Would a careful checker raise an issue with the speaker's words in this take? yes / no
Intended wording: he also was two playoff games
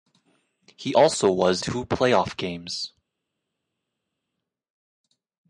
no